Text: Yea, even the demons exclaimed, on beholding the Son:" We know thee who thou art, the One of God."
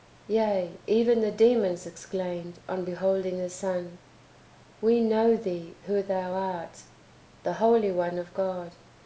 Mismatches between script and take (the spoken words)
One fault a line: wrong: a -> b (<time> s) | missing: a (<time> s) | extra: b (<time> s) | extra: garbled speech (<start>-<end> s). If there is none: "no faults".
extra: Holy (7.6 s)